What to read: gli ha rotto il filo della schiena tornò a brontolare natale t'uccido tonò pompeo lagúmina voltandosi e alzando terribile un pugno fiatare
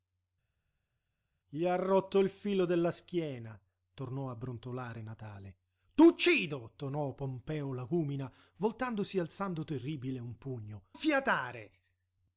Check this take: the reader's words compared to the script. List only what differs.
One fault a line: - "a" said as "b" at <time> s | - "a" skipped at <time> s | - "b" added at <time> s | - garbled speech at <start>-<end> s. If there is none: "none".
none